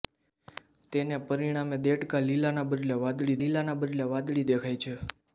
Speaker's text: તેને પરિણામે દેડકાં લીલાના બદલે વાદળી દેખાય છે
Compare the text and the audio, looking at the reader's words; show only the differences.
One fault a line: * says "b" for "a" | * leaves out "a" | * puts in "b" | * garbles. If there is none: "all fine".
* puts in "લીલાના બદલે વાદળી"